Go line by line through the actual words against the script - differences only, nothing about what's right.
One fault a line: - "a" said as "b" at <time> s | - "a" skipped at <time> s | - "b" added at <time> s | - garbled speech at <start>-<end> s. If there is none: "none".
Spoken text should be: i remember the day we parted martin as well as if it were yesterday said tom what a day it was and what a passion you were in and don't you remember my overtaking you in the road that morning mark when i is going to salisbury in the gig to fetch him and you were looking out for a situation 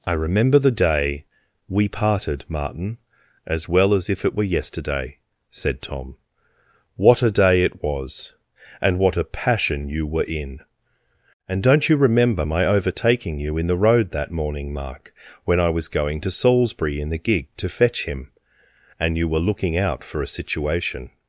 - "is" said as "was" at 15.7 s